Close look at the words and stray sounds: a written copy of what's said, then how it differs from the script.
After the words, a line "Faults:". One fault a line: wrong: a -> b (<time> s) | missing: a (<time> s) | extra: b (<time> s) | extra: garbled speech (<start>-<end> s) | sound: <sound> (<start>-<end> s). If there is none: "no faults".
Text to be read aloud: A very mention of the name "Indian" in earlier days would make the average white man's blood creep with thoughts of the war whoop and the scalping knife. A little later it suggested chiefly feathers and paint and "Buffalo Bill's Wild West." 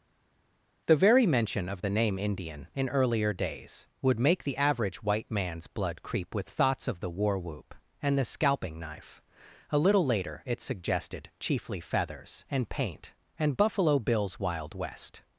The very mention of the name "Indian" in earlier days would make the average white man's blood creep with thoughts of the war whoop and the scalping knife. A little later it suggested chiefly feathers and paint and "Buffalo Bill's Wild West."
Faults:
wrong: A -> The (0.9 s)